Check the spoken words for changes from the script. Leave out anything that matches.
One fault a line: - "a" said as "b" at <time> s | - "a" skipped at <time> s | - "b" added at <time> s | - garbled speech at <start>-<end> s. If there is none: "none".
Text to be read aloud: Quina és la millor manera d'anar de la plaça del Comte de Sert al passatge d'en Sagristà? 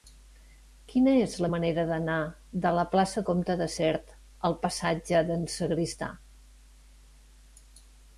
- "millor" skipped at 1.5 s
- "del" skipped at 3.2 s